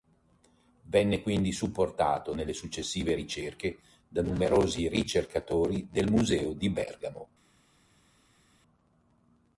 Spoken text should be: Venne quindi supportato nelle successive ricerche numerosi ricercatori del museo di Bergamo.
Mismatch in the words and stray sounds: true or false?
true